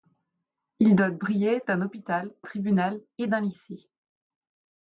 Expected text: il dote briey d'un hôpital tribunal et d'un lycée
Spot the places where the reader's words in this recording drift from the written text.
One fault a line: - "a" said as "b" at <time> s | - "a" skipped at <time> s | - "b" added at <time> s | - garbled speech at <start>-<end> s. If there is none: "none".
none